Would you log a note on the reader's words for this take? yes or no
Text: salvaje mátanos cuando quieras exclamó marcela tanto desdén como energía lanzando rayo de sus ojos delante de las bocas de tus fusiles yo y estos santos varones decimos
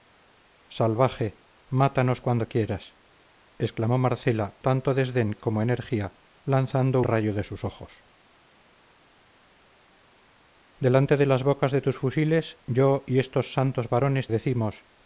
no